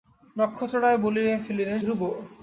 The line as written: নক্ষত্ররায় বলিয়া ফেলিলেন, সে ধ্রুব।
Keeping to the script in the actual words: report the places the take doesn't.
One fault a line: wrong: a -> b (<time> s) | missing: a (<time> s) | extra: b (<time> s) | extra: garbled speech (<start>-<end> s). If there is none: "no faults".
missing: সে (1.8 s)